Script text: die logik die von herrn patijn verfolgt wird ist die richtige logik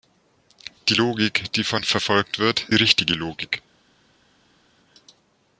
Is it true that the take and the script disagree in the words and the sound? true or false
true